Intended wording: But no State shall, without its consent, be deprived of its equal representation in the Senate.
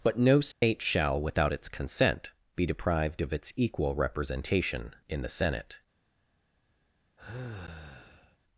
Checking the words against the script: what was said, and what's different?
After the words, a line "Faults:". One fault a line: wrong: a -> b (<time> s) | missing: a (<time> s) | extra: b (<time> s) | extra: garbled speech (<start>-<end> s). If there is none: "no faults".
But no State shall, without its consent, be deprived of its equal representation in the Senate.
Faults:
no faults